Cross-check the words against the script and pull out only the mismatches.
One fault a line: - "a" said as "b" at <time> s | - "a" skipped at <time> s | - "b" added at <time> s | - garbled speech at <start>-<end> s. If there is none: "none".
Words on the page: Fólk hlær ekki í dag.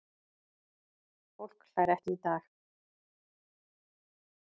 none